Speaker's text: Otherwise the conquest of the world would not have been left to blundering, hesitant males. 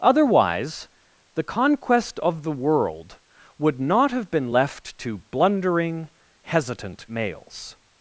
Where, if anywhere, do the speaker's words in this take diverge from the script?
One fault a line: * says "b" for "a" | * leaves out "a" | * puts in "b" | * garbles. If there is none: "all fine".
all fine